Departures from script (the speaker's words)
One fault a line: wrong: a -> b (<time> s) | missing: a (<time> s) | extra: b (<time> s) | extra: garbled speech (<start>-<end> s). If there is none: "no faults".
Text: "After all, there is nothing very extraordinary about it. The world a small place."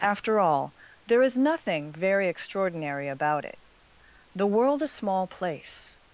no faults